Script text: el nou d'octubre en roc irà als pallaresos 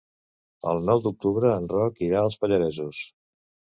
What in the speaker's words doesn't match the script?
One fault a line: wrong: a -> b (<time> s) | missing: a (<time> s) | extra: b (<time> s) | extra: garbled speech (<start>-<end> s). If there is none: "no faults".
no faults